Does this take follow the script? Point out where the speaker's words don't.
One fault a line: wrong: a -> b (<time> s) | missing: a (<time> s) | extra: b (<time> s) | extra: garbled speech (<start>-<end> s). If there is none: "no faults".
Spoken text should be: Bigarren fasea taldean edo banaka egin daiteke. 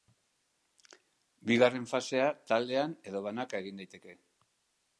no faults